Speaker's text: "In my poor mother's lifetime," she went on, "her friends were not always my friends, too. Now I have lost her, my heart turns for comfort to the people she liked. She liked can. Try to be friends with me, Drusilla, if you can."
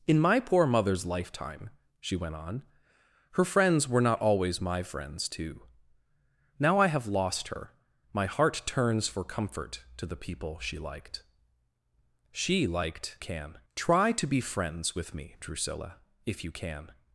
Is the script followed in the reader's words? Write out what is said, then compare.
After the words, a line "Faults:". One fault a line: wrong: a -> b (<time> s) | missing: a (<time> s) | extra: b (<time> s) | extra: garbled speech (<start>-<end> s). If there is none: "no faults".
"In my poor mother's lifetime," she went on, "her friends were not always my friends, too. Now I have lost her, my heart turns for comfort to the people she liked. She liked can. Try to be friends with me, Drusilla, if you can."
Faults:
no faults